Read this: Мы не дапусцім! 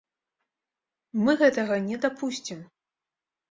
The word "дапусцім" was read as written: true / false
true